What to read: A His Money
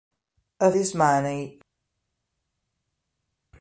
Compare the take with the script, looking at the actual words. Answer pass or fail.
pass